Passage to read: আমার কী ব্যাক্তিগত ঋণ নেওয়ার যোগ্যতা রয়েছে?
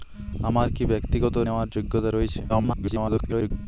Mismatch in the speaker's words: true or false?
true